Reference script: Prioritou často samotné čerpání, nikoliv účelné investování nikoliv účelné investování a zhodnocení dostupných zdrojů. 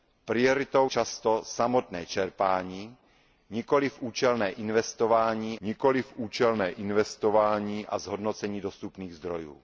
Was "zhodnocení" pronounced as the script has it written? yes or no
yes